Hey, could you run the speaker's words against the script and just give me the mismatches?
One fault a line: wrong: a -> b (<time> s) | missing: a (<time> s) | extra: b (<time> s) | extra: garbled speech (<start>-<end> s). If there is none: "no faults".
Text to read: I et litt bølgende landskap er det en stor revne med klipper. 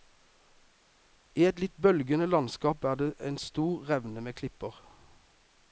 no faults